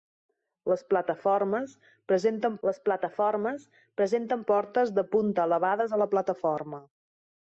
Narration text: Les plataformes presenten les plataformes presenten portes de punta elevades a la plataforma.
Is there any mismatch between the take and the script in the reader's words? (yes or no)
no